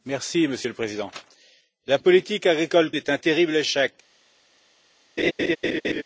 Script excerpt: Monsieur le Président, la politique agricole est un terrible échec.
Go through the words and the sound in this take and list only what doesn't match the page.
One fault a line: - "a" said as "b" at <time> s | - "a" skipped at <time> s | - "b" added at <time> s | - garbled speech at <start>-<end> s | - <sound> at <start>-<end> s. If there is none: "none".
- laugh at 5.2-6.0 s